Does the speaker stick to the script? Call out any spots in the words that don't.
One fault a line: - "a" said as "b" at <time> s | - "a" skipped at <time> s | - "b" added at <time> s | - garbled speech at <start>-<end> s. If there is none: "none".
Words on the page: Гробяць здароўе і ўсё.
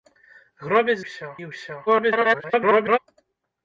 - "здароўе" said as "ўсё" at 1.1 s
- garbled speech at 1.9-3.0 s